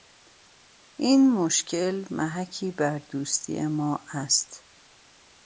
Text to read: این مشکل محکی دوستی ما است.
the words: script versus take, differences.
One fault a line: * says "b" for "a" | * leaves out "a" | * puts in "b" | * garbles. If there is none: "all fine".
* puts in "بر"